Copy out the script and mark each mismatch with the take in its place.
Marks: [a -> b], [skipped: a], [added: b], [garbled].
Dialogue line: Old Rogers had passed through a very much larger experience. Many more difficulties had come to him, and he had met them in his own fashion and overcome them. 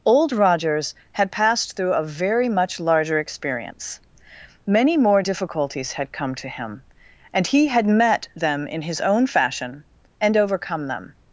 Old Rogers had passed through a very much larger experience. Many more difficulties had come to him, and he had met them in his own fashion and overcome them.